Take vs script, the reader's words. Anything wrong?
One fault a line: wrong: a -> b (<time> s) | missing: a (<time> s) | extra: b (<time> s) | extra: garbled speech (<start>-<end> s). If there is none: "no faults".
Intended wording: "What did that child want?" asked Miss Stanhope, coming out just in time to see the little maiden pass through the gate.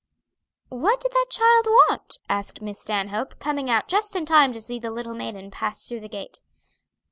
no faults